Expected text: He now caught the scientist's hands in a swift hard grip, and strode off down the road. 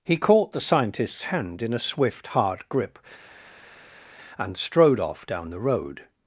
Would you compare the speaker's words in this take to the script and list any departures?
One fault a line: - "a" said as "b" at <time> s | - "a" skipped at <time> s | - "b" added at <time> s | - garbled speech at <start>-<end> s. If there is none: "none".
- "now" skipped at 0.2 s
- "hands" said as "hand" at 1.2 s